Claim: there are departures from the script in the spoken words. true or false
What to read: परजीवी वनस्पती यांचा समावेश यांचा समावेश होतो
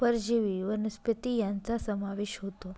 true